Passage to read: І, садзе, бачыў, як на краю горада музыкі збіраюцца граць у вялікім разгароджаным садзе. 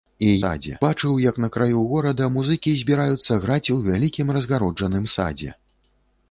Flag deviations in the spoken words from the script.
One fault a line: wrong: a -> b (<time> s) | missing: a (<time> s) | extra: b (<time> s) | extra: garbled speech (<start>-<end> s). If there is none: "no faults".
no faults